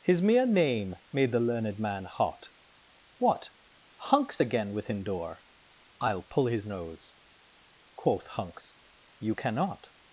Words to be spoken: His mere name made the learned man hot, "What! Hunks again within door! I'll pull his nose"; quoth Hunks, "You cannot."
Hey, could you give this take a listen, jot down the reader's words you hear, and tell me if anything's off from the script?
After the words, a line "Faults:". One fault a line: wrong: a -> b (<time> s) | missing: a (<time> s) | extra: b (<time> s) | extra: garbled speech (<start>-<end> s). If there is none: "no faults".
His mere name made the learned man hot, "What! Hunks again within door! I'll pull his nose"; quoth Hunks, "You cannot."
Faults:
no faults